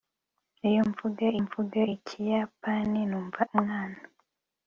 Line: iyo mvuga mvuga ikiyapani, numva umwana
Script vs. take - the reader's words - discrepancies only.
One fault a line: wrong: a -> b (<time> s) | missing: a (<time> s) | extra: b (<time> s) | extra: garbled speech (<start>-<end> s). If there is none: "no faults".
no faults